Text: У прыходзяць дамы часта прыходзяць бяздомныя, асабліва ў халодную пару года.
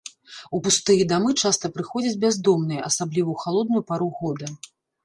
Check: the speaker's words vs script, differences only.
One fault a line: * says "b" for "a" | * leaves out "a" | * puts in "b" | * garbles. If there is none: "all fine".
* says "пустыя" for "прыходзяць"